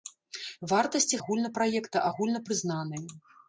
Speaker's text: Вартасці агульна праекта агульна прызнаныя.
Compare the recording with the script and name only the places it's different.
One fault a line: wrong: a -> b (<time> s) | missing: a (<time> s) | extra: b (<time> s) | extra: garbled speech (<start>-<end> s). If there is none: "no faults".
no faults